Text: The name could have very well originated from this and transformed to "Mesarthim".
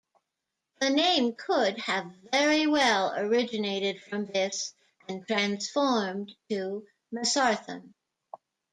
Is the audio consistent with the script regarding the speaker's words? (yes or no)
yes